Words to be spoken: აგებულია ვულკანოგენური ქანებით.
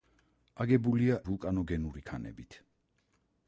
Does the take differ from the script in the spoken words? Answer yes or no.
no